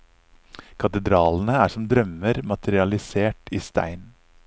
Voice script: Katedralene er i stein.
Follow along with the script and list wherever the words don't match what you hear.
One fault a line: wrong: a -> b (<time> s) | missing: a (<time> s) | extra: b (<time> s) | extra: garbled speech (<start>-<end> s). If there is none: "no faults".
extra: som drømmer materialisert (1.7 s)